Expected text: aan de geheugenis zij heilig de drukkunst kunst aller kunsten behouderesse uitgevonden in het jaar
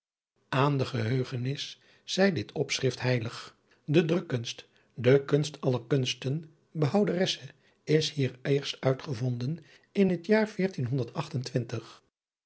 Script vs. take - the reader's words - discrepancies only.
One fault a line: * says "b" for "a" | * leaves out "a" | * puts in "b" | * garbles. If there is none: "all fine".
* puts in "dit opschrift"
* puts in "de"
* puts in "is hier eerst"